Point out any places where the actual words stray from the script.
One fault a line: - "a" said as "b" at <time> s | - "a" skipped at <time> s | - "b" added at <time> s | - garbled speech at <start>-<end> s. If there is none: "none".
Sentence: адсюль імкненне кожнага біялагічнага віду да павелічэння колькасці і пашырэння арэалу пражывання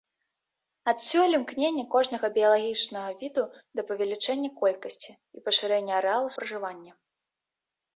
none